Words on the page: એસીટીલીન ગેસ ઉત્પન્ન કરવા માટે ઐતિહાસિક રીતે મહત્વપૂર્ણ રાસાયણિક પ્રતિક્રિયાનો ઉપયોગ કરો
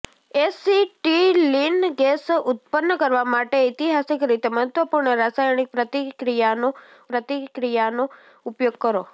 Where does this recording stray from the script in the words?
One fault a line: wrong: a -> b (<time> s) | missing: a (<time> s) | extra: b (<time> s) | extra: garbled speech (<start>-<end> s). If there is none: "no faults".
extra: પ્રતિક્રિયાનો (7.1 s)